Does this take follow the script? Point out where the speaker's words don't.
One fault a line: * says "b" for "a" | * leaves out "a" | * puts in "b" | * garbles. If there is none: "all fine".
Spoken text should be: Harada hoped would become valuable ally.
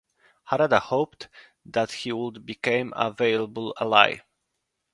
* puts in "that he"
* puts in "a"